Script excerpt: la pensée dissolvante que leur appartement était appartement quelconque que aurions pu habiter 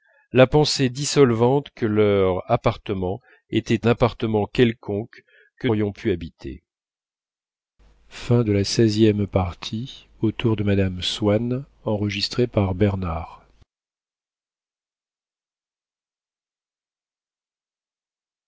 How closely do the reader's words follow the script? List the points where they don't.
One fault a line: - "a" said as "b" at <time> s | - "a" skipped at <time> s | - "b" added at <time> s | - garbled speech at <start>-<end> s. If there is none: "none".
none